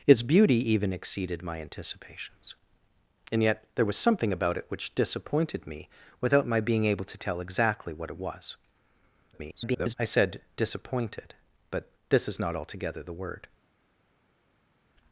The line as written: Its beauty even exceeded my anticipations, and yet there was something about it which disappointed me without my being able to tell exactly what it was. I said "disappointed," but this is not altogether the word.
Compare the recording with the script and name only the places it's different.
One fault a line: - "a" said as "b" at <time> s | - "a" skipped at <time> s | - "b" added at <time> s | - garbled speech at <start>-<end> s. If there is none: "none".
- garbled speech at 9.3-9.9 s